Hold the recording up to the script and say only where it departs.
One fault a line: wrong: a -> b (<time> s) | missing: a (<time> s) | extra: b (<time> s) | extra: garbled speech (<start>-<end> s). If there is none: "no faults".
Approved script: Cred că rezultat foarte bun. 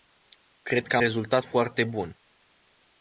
no faults